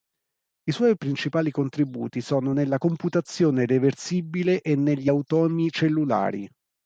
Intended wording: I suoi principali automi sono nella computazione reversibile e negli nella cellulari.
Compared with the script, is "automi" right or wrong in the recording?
wrong